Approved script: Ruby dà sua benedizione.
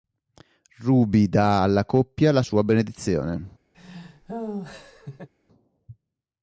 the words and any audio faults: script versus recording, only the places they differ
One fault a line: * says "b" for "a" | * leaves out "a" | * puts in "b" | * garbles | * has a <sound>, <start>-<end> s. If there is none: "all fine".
* puts in "alla coppia la"
* has a laugh, 3.7-5.3 s